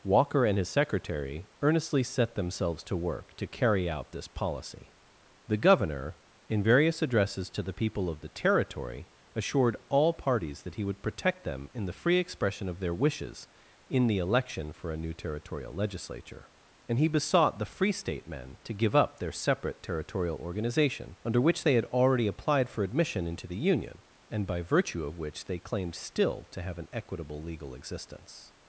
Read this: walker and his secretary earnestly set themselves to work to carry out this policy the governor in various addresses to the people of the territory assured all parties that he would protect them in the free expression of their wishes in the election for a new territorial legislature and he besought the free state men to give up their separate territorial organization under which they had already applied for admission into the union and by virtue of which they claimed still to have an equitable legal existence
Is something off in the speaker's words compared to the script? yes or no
no